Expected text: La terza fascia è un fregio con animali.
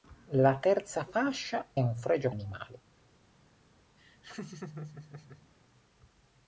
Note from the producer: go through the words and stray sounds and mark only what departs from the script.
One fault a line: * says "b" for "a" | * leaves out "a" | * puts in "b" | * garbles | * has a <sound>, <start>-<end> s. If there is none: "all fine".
* leaves out "è"
* leaves out "con"
* has a laugh, 4.0-5.5 s